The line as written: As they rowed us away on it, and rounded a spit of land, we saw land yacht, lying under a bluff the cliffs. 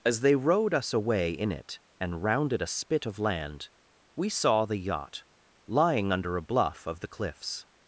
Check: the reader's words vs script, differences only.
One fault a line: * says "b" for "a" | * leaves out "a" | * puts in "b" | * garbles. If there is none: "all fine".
* says "in" for "on"
* says "the" for "land"
* puts in "of"